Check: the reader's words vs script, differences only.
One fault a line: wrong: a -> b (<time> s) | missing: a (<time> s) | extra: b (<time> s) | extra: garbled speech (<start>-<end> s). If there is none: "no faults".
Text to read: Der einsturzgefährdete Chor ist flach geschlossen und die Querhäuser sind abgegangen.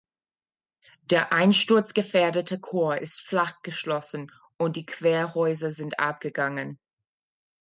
no faults